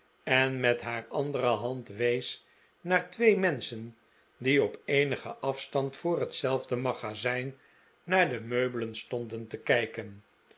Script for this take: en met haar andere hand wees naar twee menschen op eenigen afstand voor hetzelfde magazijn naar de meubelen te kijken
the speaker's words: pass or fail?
fail